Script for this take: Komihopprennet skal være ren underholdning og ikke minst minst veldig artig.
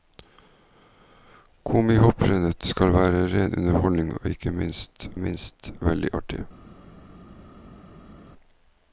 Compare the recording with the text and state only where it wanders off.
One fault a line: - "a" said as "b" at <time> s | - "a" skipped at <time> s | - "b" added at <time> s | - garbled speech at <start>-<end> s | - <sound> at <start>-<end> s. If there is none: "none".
none